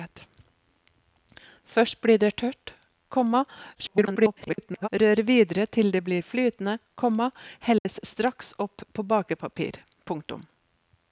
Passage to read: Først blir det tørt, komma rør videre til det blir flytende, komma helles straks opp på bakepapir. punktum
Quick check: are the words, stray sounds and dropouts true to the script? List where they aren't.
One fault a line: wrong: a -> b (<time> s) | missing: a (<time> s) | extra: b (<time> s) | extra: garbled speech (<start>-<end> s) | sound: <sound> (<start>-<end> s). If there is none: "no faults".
extra: garbled speech (3.7-4.9 s)
sound: dropout (7.8-7.9 s)